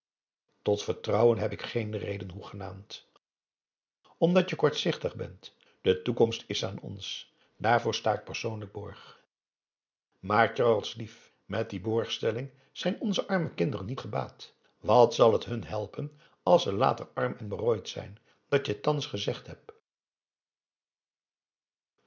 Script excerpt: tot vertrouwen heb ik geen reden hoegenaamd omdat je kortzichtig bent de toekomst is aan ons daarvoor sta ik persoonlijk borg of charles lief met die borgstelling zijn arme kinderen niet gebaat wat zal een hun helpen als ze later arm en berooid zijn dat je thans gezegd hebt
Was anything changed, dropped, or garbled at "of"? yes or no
yes